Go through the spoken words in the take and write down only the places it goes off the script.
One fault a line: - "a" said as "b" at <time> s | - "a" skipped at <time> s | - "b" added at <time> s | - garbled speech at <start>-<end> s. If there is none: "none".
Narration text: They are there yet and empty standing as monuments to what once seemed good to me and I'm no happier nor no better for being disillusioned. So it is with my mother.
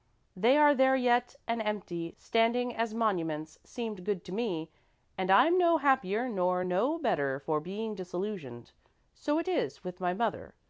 - "to what once" skipped at 3.6 s